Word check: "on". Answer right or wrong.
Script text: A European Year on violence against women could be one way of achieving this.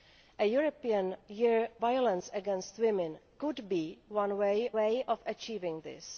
wrong